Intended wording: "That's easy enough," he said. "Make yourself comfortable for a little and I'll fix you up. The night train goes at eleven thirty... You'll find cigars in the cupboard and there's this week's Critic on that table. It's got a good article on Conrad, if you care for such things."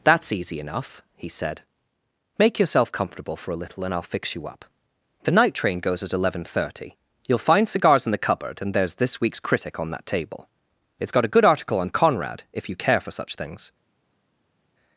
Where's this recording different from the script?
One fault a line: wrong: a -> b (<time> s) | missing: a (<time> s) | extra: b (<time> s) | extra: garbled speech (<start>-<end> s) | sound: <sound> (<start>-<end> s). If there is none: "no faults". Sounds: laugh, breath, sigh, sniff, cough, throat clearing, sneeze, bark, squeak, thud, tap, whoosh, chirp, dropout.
no faults